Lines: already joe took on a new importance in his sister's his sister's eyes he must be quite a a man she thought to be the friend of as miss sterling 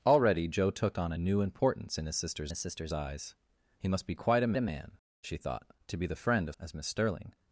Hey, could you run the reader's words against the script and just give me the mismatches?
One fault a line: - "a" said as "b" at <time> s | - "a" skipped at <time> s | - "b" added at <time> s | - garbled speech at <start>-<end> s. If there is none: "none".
none